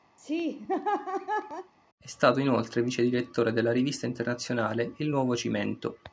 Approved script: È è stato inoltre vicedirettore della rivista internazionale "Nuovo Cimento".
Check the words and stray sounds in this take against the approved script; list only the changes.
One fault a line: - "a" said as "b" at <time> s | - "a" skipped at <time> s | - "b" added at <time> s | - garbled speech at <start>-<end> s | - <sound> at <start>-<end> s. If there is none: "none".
- laugh at 0.2-1.7 s
- "è" skipped at 2.1 s
- "Il" added at 5.0 s